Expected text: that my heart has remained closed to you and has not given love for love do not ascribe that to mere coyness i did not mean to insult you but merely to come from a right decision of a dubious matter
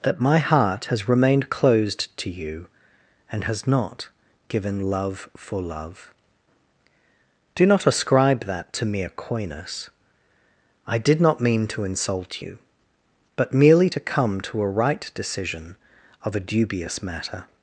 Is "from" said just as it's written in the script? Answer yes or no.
no